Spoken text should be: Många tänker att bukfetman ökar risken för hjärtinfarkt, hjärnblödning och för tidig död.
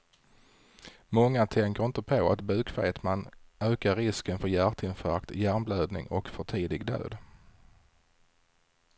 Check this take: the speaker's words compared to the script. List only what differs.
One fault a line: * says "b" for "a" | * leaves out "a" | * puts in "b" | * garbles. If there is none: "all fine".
* puts in "inte på"